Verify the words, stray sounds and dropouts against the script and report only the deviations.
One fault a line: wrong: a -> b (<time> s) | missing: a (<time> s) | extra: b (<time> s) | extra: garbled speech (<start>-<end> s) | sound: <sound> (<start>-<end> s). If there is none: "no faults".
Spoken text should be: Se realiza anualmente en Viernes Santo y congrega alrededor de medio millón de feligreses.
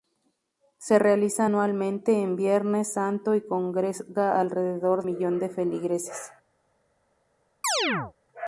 missing: de medio (5.0 s)
sound: chirp (7.6-8.1 s)